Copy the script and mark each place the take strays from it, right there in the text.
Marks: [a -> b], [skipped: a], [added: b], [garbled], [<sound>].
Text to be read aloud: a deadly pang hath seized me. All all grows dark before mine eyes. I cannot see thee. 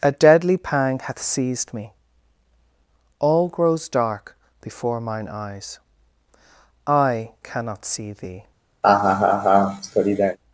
a deadly pang hath seized me. All [skipped: all] grows dark before mine eyes. I cannot see thee. [laugh]